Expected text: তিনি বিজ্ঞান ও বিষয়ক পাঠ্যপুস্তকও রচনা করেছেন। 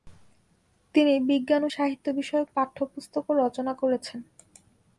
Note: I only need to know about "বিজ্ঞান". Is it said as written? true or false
true